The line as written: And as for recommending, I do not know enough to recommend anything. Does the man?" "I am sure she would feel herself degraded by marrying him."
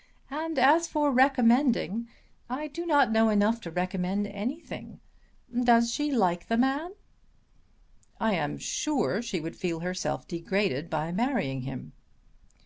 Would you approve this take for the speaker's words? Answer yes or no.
no